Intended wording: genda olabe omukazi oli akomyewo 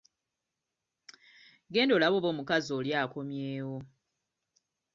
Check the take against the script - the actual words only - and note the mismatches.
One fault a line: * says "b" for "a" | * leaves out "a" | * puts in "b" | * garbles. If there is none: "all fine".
* puts in "oba"